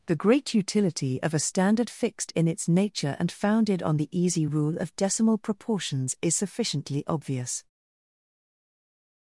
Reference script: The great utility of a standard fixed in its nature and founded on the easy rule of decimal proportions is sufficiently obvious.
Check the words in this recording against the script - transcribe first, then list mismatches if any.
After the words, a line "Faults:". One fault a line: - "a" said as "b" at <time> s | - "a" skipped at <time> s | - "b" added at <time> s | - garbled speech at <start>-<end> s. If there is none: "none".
The great utility of a standard fixed in its nature and founded on the easy rule of decimal proportions is sufficiently obvious.
Faults:
none